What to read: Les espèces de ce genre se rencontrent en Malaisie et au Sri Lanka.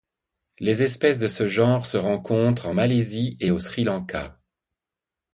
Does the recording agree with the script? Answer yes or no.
yes